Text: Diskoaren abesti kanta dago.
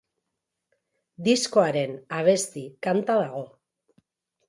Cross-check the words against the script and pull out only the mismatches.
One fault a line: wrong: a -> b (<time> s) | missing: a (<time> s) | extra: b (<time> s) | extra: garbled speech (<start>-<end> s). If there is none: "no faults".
no faults